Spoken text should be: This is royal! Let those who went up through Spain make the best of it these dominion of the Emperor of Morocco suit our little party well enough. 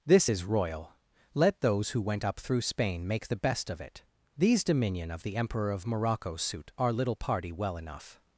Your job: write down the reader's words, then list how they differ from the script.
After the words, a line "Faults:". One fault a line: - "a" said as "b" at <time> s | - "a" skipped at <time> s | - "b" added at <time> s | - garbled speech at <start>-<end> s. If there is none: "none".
This is royal! Let those who went up through Spain make the best of it these dominion of the Emperor of Morocco suit our little party well enough.
Faults:
none